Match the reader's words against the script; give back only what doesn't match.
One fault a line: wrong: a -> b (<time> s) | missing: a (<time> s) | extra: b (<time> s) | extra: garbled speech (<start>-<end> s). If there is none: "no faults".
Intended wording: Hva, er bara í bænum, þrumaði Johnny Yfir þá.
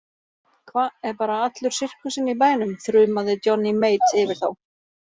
extra: allur sirkusinn (1.5 s)
extra: Mate (3.9 s)